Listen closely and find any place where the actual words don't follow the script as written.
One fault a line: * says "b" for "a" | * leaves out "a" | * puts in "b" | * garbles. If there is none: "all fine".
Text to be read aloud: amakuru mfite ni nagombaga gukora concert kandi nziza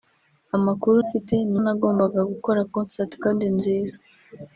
all fine